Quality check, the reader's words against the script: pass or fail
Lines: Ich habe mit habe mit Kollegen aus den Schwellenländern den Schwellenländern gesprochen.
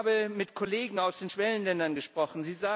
fail